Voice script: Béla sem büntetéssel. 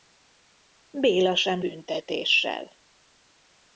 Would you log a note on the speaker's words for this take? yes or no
no